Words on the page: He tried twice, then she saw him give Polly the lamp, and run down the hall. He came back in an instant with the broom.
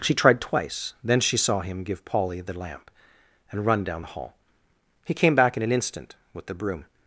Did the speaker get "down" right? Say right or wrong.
right